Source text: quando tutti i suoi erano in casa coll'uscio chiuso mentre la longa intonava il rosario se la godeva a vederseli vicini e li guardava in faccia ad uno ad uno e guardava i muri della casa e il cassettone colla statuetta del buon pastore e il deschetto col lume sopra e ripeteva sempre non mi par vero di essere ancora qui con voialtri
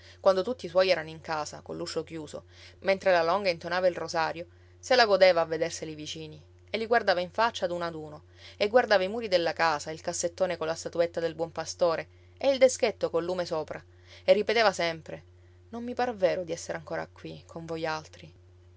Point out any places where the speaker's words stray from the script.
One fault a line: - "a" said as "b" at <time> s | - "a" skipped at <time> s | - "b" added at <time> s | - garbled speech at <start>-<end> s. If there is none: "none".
none